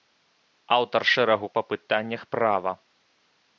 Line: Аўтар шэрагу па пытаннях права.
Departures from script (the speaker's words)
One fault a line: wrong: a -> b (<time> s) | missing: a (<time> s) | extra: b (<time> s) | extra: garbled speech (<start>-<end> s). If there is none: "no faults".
no faults